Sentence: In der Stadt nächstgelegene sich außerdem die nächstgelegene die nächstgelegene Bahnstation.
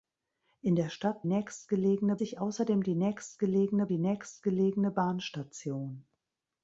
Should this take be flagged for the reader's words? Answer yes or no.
no